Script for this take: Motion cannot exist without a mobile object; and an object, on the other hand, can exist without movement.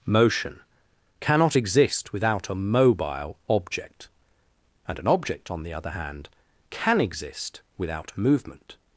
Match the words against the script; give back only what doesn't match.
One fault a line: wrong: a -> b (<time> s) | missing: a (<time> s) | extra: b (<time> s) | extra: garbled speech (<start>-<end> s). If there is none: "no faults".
no faults